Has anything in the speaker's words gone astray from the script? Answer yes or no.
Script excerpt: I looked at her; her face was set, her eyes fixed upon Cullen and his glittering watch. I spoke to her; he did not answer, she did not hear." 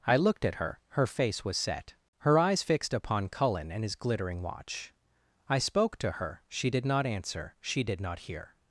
yes